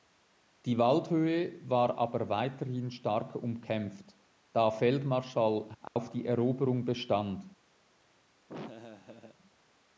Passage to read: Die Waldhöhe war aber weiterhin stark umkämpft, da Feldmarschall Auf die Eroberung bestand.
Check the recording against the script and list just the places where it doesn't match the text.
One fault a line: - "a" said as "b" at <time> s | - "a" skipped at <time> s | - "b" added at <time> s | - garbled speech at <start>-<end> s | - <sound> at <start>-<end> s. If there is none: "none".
- dropout at 5.9-6.0 s
- laugh at 8.5-9.4 s